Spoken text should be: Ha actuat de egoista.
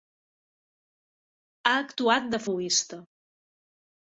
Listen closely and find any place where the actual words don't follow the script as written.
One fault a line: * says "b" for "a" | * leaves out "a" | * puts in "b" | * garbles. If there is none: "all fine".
all fine